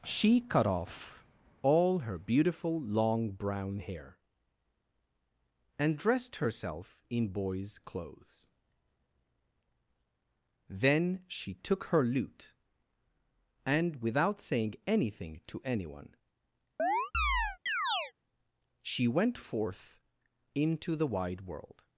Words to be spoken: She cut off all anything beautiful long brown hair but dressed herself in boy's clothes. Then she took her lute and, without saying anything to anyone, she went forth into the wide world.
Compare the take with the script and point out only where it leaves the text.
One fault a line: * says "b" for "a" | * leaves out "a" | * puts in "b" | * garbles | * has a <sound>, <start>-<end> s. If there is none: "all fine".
* says "her" for "anything"
* says "and" for "but"
* has a chirp, 16.8-18.1 s